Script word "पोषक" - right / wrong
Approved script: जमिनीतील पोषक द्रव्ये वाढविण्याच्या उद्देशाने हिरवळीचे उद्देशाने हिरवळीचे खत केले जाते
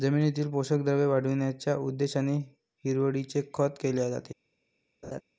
right